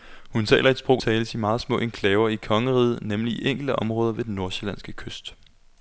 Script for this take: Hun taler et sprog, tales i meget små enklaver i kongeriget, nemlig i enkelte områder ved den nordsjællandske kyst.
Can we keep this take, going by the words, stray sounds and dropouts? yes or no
yes